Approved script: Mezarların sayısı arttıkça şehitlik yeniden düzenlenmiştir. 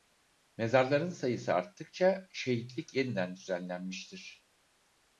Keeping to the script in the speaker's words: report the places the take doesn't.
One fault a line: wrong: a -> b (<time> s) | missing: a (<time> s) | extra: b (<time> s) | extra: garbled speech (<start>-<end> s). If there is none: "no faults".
no faults